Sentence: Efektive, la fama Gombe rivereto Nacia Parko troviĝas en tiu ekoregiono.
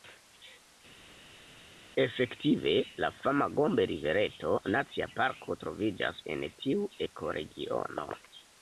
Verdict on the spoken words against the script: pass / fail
pass